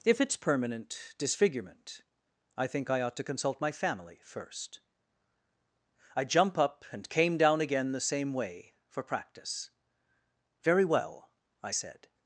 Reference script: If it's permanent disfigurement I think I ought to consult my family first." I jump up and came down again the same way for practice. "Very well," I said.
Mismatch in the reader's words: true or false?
false